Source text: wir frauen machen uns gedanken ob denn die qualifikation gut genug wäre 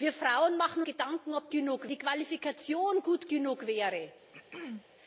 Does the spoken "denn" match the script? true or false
false